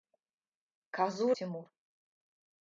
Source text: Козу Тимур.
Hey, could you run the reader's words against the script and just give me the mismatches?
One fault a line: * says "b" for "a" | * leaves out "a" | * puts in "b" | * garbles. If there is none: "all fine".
all fine